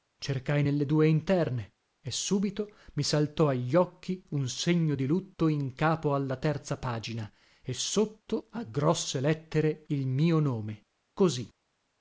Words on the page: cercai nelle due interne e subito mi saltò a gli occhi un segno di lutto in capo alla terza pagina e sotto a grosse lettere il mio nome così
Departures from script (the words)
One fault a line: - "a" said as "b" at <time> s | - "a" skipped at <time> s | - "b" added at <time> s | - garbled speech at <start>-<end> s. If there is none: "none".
none